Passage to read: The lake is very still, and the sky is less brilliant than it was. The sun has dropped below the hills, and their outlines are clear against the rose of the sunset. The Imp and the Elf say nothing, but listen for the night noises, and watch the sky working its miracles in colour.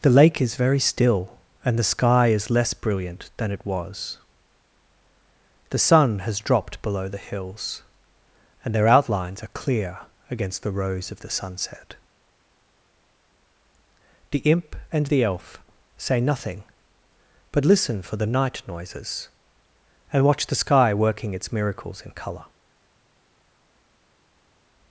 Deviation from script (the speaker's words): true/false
false